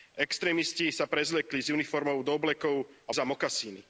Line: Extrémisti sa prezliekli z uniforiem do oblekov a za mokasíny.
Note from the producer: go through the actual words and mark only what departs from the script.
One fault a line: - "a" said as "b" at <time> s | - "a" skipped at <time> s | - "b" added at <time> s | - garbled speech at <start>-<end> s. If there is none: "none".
none